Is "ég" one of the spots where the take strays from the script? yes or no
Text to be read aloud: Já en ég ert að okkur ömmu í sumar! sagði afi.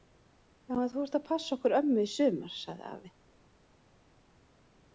yes